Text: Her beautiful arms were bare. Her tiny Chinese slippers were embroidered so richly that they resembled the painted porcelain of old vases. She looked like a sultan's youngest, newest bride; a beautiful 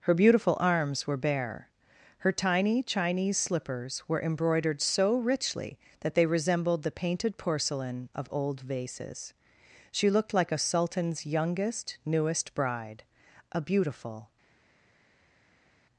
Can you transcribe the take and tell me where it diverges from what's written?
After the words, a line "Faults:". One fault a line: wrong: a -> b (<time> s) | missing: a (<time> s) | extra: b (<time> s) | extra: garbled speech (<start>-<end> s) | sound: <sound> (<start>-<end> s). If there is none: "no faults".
Her beautiful arms were bare. Her tiny Chinese slippers were embroidered so richly that they resembled the painted porcelain of old vases. She looked like a sultan's youngest, newest bride; a beautiful
Faults:
no faults